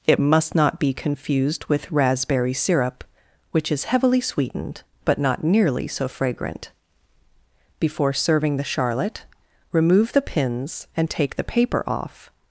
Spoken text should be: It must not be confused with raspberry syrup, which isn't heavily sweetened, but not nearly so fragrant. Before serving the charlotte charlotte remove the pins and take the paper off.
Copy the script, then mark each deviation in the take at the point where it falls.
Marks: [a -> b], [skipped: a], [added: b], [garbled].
It must not be confused with raspberry syrup, which [isn't -> is] heavily sweetened, but not nearly so fragrant. Before serving the charlotte [skipped: charlotte] remove the pins and take the paper off.